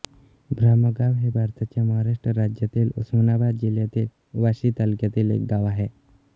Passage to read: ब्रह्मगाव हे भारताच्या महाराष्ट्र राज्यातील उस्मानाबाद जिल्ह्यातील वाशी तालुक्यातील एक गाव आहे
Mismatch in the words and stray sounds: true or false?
false